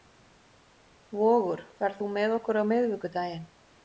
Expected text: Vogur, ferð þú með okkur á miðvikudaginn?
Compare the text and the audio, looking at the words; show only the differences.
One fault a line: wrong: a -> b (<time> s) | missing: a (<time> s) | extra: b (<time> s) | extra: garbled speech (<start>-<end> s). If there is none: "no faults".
no faults